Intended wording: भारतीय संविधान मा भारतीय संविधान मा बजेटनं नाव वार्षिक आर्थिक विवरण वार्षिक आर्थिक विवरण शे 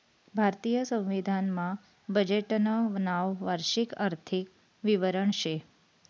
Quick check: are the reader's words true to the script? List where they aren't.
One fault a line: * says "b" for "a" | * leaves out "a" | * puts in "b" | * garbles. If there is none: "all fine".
* leaves out "भारतीय संविधान मा"
* leaves out "वार्षिक आर्थिक विवरण"